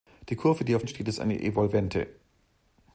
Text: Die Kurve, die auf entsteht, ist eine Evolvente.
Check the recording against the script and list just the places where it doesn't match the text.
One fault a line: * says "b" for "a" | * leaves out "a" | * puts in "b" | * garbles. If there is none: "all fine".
all fine